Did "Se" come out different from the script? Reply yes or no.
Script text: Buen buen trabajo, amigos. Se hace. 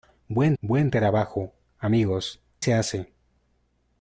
no